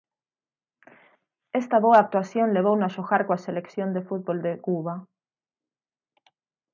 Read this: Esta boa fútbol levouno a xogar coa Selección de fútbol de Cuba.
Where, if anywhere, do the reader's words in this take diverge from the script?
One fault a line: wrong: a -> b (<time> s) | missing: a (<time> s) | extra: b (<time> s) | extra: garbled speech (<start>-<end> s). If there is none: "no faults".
wrong: fútbol -> actuación (2.0 s)